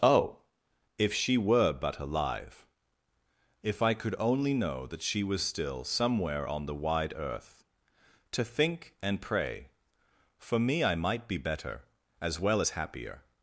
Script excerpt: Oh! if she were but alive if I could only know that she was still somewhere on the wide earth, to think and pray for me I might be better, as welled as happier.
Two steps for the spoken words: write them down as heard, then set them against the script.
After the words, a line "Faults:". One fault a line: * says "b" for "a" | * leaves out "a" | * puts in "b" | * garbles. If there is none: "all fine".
Oh! if she were but alive if I could only know that she was still somewhere on the wide earth, to think and pray for me I might be better, as well as happier.
Faults:
* says "well" for "welled"